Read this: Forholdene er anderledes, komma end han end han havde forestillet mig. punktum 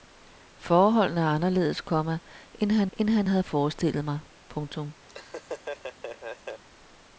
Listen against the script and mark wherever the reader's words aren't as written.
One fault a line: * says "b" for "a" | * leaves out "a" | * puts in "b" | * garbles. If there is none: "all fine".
all fine